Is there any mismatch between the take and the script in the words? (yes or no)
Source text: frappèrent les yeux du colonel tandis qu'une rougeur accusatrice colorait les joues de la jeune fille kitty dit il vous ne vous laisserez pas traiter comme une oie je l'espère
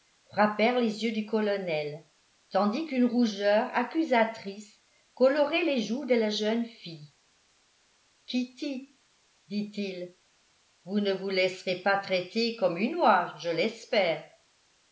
no